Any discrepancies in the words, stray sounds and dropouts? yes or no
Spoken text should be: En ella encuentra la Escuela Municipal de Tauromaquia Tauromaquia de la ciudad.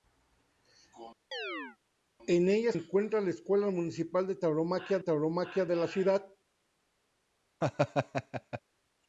yes